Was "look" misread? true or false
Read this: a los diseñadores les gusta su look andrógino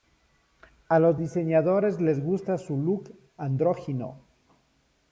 false